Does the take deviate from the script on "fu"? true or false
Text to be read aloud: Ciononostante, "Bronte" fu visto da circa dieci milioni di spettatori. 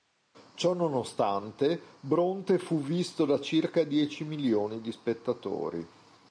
false